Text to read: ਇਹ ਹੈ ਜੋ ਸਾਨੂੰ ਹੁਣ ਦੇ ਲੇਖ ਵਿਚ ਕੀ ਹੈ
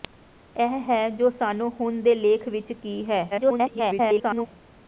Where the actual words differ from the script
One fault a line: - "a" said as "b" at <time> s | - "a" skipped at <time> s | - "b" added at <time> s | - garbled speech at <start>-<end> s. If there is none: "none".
- garbled speech at 3.3-4.5 s